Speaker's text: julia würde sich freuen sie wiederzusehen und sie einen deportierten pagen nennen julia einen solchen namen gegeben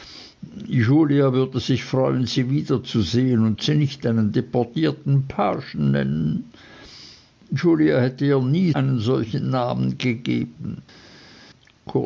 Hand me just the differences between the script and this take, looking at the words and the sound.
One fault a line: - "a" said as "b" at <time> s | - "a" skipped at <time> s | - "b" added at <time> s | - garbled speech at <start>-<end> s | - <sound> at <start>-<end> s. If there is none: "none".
- "nicht" added at 3.8 s
- "hätte ihr nie" added at 8.0 s